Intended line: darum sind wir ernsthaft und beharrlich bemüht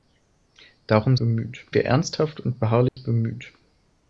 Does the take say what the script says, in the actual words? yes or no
no